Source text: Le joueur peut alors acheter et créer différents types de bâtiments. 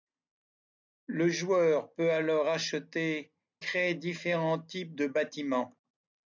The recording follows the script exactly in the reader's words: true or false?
false